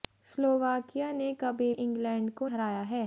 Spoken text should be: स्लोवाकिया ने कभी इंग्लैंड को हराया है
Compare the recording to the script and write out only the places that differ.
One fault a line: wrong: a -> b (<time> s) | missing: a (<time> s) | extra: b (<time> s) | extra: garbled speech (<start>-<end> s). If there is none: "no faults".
no faults